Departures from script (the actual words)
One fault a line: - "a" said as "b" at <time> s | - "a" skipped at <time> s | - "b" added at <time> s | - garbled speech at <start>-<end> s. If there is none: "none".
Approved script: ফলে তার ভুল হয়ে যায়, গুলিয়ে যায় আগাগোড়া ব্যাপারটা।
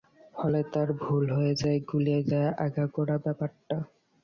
none